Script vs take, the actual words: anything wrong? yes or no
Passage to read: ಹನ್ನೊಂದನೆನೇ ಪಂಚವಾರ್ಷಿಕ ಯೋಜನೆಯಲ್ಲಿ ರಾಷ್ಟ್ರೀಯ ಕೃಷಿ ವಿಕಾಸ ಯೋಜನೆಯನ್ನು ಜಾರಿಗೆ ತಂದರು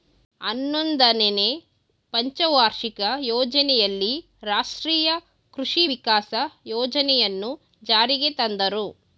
no